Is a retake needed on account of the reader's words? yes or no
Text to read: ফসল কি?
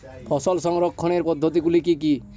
yes